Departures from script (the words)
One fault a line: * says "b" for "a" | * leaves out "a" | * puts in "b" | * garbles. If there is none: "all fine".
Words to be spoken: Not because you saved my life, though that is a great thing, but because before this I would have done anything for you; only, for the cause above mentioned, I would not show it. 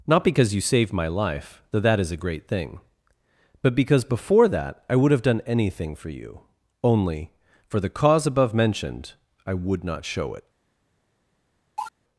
* says "that" for "this"